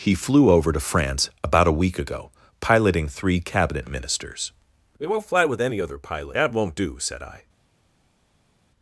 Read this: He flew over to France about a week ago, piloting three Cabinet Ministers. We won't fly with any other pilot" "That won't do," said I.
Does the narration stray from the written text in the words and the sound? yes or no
no